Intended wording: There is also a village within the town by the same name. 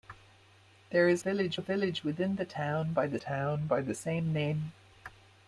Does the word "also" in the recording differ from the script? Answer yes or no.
yes